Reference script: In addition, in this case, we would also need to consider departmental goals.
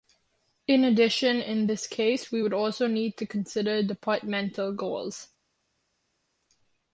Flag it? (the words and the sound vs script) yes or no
no